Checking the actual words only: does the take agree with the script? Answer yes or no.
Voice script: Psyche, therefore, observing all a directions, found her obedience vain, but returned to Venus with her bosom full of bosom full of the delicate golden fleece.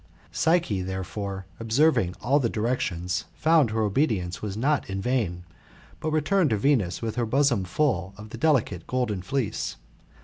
no